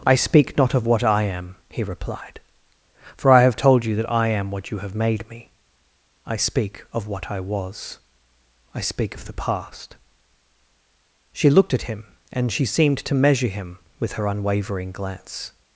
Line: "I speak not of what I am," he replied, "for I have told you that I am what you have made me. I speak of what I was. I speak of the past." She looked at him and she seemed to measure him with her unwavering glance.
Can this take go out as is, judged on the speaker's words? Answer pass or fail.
pass